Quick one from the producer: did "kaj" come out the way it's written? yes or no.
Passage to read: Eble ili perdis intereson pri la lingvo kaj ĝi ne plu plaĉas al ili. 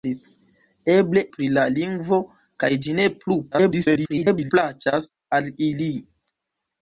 yes